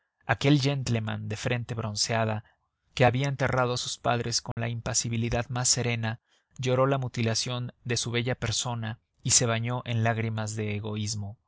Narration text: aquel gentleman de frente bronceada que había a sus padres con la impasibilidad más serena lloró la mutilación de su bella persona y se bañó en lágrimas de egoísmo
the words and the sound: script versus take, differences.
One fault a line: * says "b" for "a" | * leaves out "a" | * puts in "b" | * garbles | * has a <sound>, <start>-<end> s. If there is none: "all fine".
* puts in "enterrado"
* has a dropout, 4.5-4.6 s